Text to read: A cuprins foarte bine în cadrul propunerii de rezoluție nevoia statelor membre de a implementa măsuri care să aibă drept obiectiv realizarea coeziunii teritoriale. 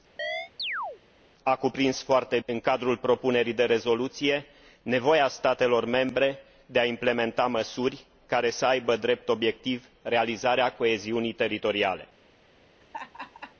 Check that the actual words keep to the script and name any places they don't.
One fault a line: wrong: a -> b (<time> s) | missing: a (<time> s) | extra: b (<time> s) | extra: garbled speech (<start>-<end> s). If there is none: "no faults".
missing: bine (2.4 s)